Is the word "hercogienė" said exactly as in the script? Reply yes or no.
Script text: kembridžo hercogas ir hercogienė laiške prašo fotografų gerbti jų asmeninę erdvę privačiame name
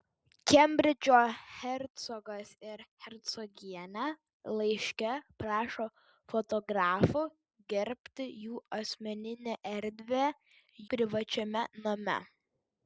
yes